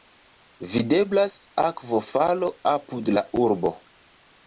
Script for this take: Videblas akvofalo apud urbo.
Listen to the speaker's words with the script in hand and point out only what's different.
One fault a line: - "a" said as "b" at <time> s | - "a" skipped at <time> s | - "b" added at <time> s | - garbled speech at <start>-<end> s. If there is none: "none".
- "la" added at 3.2 s